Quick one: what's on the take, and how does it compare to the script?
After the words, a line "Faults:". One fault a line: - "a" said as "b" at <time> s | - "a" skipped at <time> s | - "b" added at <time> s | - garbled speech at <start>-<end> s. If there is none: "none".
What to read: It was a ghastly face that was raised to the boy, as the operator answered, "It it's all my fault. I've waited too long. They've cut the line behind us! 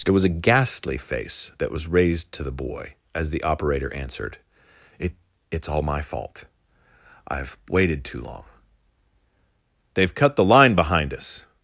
It was a ghastly face that was raised to the boy, as the operator answered, "It it's all my fault. I've waited too long. They've cut the line behind us!
Faults:
none